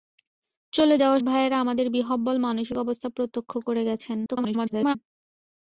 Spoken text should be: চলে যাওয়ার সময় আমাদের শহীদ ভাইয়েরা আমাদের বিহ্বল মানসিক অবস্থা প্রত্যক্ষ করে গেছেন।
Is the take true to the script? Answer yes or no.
no